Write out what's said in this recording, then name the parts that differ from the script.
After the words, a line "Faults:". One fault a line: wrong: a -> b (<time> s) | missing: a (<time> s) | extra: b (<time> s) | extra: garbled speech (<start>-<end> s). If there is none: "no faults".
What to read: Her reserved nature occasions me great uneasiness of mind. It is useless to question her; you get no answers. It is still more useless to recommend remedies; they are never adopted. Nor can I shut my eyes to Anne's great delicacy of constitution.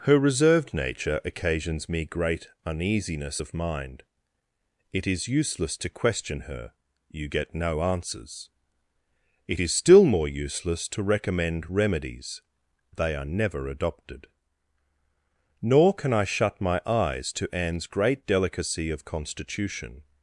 Her reserved nature occasions me great uneasiness of mind. It is useless to question her; you get no answers. It is still more useless to recommend remedies; they are never adopted. Nor can I shut my eyes to Anne's great delicacy of constitution.
Faults:
no faults